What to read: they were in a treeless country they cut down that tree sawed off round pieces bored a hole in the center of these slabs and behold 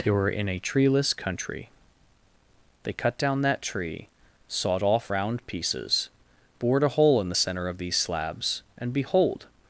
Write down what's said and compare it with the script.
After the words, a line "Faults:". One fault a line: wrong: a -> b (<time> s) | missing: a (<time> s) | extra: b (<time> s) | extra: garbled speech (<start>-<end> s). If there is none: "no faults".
they were in a treeless country they cut down that tree sawed off round pieces bored a hole in the center of these slabs and behold
Faults:
no faults